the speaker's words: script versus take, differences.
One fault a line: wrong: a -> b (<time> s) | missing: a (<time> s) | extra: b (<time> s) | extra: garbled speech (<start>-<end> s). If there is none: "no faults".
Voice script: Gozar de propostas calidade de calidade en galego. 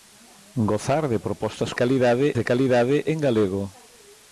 no faults